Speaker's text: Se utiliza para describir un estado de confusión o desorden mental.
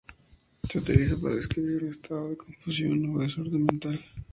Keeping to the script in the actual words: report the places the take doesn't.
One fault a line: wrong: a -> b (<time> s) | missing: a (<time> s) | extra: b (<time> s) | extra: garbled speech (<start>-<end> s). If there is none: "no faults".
no faults